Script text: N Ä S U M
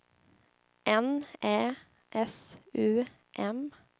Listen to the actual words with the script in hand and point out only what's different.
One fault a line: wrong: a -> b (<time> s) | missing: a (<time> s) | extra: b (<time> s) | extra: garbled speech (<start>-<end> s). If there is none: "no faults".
no faults